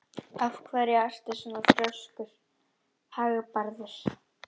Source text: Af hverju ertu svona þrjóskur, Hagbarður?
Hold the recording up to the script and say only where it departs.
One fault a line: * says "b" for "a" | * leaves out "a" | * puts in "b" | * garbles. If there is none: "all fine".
all fine